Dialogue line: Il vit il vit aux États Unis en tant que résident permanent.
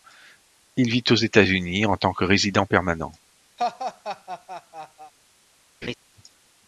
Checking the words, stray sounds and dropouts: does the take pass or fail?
fail